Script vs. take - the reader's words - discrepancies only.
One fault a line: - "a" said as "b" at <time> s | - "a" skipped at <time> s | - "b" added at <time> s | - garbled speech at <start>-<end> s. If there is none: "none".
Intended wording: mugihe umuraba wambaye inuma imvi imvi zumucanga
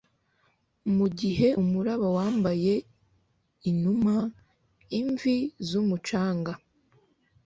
- "imvi" skipped at 5.4 s